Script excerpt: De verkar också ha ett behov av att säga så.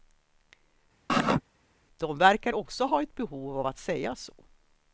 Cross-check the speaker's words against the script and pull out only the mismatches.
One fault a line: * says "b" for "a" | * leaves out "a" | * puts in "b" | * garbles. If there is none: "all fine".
all fine